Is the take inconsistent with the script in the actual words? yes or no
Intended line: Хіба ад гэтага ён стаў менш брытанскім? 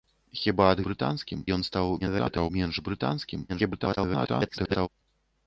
yes